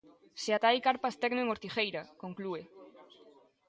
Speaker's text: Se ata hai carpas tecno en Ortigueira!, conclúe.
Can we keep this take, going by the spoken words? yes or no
yes